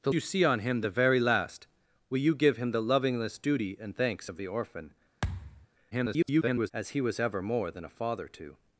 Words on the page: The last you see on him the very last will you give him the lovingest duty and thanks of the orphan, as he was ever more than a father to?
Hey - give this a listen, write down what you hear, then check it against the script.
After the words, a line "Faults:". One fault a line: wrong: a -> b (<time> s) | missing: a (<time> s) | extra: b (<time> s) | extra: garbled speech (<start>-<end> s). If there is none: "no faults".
The you see on him the very last will you give him the lovingest duty and thanks of the orphan, [garbled] as he was ever more than a father to?
Faults:
missing: last (0.1 s)
extra: garbled speech (5.9-6.7 s)